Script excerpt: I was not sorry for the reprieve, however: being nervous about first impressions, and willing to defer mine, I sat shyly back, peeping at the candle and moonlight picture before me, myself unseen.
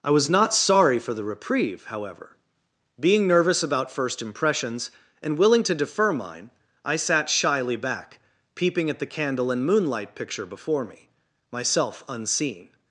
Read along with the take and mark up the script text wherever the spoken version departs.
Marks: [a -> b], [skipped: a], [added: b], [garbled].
I was not sorry for the reprieve, however: being nervous about first impressions, and willing to defer mine, I sat shyly back, peeping at the candle and moonlight picture before me, myself unseen.